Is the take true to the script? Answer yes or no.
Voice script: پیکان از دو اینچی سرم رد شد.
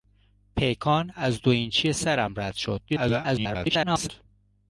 no